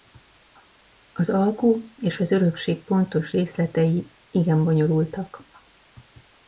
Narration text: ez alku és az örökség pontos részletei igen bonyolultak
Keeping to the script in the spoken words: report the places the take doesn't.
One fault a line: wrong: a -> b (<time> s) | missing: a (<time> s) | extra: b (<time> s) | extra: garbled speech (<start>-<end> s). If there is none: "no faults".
wrong: ez -> az (1.1 s)